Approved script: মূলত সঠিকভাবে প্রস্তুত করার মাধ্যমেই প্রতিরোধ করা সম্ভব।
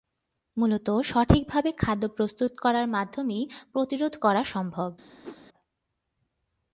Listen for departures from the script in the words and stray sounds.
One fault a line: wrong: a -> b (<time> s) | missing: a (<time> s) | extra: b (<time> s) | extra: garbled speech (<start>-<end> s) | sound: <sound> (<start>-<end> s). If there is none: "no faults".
extra: খাদ্য (1.8 s)
sound: whoosh (5.2-5.4 s)